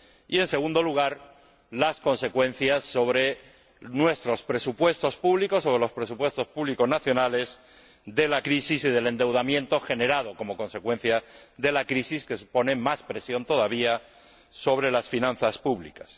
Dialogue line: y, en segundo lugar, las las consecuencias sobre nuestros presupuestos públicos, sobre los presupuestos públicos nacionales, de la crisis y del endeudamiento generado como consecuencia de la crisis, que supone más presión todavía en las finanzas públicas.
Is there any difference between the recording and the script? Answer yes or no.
yes